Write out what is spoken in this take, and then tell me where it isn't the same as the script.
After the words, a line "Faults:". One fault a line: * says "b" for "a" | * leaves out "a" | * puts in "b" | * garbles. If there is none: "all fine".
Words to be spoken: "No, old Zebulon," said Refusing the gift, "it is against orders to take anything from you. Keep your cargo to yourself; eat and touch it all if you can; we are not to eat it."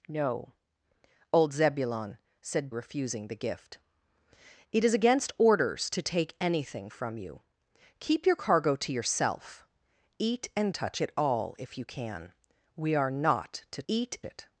"No, old Zebulon," said Refusing the gift, "it is against orders to take anything from you. Keep your cargo to yourself; eat and touch it all if you can; we are not to eat it."
Faults:
all fine